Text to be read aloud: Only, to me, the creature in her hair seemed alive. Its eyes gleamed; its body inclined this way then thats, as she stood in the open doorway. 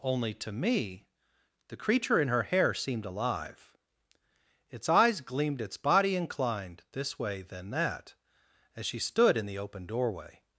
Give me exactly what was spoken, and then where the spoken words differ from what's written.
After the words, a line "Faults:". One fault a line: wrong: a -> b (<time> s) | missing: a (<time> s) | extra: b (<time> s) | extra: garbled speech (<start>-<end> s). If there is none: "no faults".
Only, to me, the creature in her hair seemed alive. Its eyes gleamed; its body inclined this way then that, as she stood in the open doorway.
Faults:
wrong: thats -> that (7.7 s)